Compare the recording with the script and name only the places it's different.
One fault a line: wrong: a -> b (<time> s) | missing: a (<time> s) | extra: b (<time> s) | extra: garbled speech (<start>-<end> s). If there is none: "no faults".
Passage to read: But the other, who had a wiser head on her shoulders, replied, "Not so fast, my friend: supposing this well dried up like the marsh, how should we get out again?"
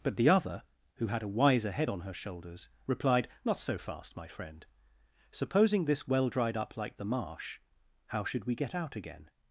no faults